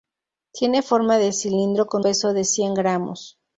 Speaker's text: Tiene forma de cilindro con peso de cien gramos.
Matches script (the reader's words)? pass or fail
pass